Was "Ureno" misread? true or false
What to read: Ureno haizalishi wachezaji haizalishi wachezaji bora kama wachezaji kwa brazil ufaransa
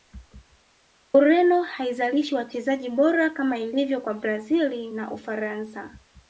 false